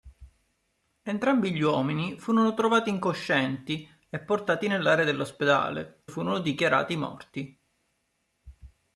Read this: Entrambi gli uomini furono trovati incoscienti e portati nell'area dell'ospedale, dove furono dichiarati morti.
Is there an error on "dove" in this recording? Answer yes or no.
yes